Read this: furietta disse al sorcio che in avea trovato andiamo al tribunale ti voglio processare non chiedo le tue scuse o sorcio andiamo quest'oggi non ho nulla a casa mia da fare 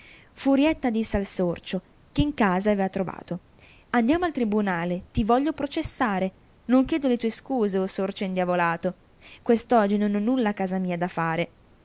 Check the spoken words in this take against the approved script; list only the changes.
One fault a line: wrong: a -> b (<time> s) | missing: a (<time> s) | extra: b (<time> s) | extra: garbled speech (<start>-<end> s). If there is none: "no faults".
extra: casa (2.3 s)
wrong: andiamo -> indiavolato (8.2 s)